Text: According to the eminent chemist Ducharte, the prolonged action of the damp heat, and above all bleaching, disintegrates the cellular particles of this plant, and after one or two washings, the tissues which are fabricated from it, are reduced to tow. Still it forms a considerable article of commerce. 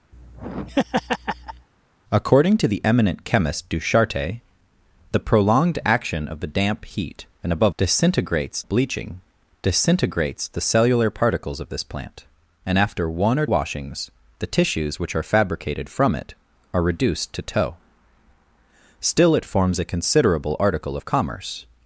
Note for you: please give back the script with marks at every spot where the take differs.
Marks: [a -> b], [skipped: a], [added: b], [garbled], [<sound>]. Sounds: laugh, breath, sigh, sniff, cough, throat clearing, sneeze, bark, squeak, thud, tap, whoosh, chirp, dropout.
[laugh] According to the eminent chemist Ducharte, the prolonged action of the damp heat, and above [all -> disintegrates] bleaching, disintegrates the cellular particles of this plant, and after one or [skipped: two] washings, the tissues which are fabricated from it, are reduced to tow. Still it forms a considerable article of commerce.